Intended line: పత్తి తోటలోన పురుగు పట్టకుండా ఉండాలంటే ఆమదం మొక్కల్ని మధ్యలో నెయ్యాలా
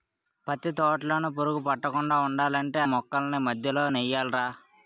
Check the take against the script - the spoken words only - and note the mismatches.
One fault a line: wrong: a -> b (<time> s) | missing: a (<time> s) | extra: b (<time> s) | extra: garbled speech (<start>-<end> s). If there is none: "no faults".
missing: ఆమదం (2.8 s)